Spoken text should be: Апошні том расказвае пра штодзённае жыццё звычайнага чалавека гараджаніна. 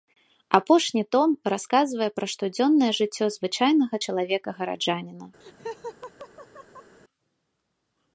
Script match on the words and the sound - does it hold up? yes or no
no